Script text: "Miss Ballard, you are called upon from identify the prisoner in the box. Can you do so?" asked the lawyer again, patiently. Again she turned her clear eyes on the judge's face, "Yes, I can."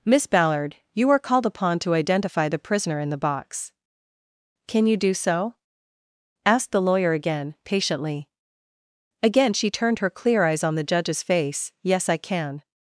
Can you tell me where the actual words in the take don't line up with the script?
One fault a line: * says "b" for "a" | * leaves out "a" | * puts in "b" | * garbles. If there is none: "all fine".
* says "to" for "from"